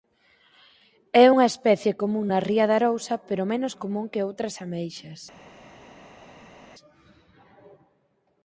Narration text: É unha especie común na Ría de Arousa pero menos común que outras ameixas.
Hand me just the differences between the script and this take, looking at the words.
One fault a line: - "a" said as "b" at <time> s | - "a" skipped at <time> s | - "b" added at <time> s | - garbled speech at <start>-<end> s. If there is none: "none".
none